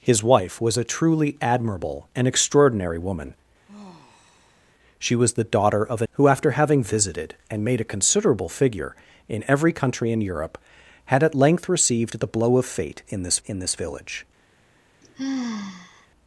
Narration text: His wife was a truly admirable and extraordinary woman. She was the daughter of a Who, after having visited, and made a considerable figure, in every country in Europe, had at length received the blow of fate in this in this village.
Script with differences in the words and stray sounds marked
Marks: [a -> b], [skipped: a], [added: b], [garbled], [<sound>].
His wife was a truly admirable and extraordinary woman. [sigh] She was the daughter of a Who, after having visited, and made a considerable figure, in every country in Europe, had at length received the blow of fate in this in this village. [sigh]